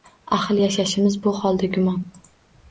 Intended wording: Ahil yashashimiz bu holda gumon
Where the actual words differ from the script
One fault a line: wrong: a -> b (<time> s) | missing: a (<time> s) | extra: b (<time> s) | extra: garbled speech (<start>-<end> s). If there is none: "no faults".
no faults